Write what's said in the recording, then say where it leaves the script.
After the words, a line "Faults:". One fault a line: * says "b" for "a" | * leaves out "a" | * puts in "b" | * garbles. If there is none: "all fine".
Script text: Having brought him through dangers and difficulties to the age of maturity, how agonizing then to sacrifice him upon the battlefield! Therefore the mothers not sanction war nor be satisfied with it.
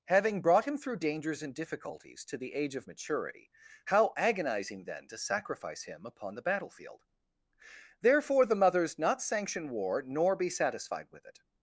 Having brought him through dangers and difficulties to the age of maturity, how agonizing then to sacrifice him upon the battlefield! Therefore the mothers not sanction war nor be satisfied with it.
Faults:
all fine